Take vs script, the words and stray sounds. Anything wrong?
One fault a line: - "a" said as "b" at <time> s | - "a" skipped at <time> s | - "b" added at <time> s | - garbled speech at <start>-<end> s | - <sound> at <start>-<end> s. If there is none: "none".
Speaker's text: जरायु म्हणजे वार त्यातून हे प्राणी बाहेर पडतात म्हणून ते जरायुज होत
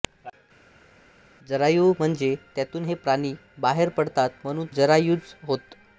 - "वार" skipped at 2.3 s
- "ते" skipped at 4.7 s